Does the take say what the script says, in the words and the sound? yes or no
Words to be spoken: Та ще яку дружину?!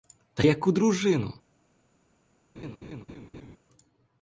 no